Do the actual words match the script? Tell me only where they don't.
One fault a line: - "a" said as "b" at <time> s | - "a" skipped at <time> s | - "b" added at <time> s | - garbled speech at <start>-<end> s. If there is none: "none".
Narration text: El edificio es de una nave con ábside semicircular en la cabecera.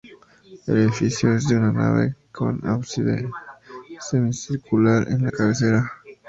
none